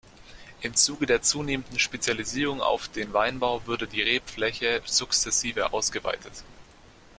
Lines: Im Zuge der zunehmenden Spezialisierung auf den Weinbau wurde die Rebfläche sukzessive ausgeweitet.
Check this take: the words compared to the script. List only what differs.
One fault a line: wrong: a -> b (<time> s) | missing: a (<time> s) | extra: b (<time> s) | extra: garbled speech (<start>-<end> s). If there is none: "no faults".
no faults